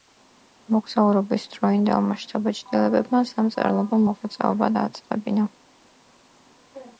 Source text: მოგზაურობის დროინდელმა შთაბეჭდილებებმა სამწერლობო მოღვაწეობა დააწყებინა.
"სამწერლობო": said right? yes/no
yes